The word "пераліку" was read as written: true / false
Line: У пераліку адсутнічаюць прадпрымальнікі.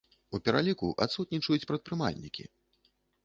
true